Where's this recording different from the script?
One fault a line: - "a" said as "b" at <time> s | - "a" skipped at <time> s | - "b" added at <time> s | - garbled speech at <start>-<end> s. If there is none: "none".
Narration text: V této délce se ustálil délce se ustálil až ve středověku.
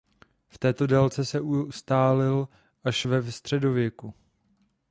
- "délce se ustálil" skipped at 2.5 s